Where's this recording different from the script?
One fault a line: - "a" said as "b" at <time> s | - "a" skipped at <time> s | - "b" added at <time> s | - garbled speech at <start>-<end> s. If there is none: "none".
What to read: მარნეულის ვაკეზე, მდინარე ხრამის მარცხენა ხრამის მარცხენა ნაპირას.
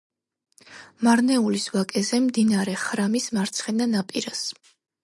- "ხრამის მარცხენა" skipped at 3.9 s